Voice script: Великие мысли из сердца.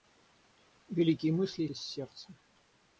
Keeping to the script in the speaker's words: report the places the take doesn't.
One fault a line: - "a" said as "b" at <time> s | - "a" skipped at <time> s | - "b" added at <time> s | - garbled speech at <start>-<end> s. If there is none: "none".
none